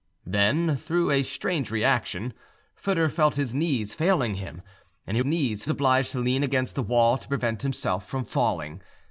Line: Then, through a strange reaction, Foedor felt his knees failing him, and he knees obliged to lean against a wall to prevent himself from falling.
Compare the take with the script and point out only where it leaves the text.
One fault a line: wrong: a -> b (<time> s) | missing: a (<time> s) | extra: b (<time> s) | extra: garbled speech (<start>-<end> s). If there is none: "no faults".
no faults